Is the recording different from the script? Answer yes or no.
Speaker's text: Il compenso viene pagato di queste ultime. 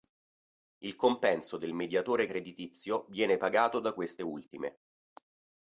yes